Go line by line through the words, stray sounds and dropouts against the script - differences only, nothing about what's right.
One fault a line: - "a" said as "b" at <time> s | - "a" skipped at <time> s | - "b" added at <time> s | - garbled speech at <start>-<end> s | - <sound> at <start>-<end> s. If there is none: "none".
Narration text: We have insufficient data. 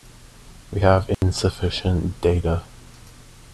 - dropout at 1.1-1.2 s